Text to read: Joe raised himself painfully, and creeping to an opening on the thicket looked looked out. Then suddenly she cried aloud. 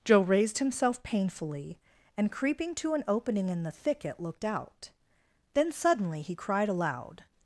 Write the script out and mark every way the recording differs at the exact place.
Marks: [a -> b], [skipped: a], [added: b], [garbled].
Joe raised himself painfully, and creeping to an opening [on -> in] the thicket looked [skipped: looked] out. Then suddenly [she -> he] cried aloud.